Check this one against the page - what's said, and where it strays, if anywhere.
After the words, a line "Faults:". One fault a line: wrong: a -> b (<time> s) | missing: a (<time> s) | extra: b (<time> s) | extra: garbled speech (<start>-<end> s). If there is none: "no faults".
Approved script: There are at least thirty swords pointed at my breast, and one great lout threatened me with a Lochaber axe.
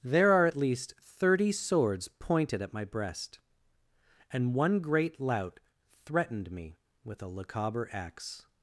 There are at least thirty swords pointed at my breast, and one great lout threatened me with a Lochaber axe.
Faults:
no faults